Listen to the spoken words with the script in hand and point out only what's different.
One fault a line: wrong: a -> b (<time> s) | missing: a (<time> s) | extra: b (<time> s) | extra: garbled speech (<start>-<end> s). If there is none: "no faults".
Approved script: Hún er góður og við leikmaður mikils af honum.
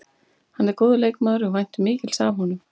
wrong: Hún -> Hann (0.6 s)
extra: leikmaður (1.0 s)
wrong: leikmaður -> væntum (1.6 s)